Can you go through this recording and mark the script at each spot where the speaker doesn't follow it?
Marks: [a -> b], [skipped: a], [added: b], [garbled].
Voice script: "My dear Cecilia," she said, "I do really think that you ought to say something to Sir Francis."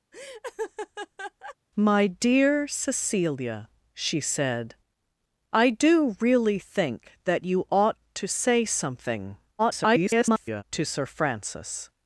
"My dear Cecilia," she said, "I do really think that you ought to say something [garbled] to Sir Francis."